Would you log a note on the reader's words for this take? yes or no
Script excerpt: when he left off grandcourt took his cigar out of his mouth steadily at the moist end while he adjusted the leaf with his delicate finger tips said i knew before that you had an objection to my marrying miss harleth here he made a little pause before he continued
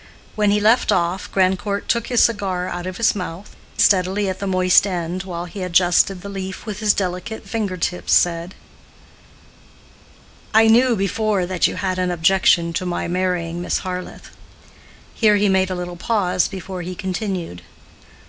no